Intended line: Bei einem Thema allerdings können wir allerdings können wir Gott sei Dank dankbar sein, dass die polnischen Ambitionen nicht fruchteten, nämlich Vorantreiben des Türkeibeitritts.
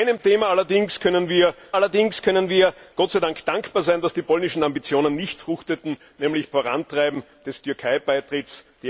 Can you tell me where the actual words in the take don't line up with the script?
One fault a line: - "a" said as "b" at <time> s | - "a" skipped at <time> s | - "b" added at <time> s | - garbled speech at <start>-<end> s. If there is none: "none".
none